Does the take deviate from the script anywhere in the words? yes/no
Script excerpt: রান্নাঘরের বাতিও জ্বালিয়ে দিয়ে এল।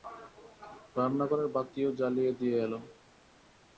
no